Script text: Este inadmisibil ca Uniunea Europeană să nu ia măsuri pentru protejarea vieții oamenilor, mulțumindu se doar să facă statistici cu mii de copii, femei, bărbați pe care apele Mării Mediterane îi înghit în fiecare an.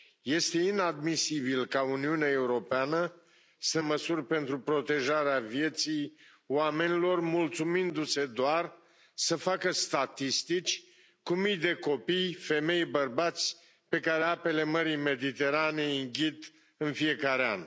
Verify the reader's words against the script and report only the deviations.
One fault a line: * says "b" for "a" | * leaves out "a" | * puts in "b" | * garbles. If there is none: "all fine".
* leaves out "nu ia"